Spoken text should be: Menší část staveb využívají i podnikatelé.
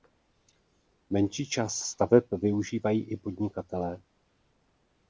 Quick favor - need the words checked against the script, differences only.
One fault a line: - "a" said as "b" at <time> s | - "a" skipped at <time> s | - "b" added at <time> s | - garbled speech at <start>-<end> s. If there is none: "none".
none